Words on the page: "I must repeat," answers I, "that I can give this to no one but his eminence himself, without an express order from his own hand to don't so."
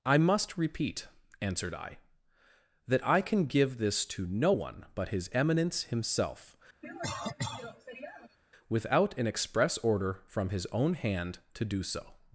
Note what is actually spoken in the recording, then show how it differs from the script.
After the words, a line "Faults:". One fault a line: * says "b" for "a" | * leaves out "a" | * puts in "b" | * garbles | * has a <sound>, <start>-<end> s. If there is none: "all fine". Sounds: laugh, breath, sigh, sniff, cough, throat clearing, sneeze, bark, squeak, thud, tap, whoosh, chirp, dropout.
"I must repeat," answered I, "that I can give this to no one but his eminence himself, without an express order from his own hand to do so."
Faults:
* says "answered" for "answers"
* has a cough, 6.8-8.4 s
* says "do" for "don't"